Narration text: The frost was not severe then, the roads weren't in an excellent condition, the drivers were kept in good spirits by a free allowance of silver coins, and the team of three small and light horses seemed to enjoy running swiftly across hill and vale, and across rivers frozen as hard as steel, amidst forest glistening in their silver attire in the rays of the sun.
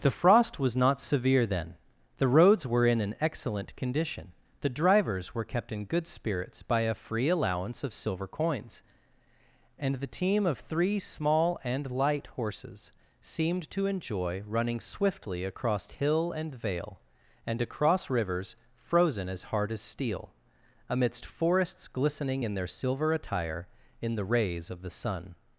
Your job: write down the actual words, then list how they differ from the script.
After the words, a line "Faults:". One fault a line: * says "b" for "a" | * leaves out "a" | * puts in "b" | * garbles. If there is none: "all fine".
The frost was not severe then, the roads were in an excellent condition, the drivers were kept in good spirits by a free allowance of silver coins, and the team of three small and light horses seemed to enjoy running swiftly across hill and vale, and across rivers frozen as hard as steel, amidst forests glistening in their silver attire in the rays of the sun.
Faults:
* says "were" for "weren't"
* says "forests" for "forest"